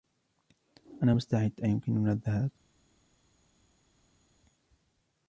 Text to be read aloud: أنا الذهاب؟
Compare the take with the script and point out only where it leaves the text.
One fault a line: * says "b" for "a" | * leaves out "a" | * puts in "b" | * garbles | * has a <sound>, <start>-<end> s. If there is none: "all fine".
* puts in "مستعد أيمكننا"